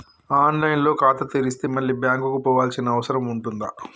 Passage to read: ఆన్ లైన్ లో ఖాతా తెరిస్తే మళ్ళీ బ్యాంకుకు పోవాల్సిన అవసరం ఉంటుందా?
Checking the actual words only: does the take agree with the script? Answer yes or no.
yes